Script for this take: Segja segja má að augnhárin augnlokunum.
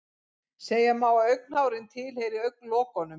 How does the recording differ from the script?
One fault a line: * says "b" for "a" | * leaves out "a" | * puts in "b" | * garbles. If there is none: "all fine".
* leaves out "segja"
* puts in "tilheyri"